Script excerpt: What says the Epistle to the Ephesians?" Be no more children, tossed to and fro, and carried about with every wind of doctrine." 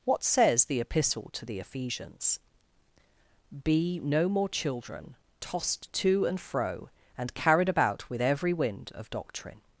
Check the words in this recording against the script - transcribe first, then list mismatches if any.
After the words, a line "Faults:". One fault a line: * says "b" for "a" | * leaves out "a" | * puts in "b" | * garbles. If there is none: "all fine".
What says the Epistle to the Ephesians?" Be no more children, tossed to and fro, and carried about with every wind of doctrine."
Faults:
all fine